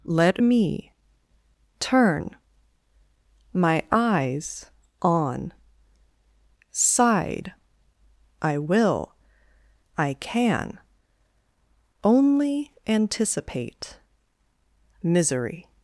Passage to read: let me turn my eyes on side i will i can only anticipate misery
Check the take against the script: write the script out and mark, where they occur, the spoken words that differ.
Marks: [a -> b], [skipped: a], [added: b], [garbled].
let me turn my eyes on side i will i can only anticipate misery